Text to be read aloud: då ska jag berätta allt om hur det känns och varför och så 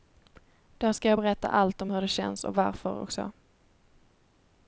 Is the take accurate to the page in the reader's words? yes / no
yes